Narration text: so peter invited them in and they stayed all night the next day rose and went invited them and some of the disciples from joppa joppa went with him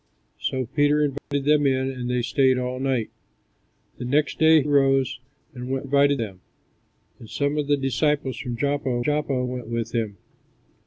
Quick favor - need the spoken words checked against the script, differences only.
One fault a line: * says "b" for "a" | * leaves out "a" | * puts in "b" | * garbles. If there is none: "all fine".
all fine